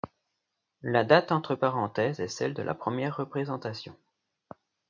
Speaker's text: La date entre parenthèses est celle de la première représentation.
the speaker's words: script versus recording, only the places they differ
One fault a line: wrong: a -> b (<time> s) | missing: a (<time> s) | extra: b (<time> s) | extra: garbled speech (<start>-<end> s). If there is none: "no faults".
no faults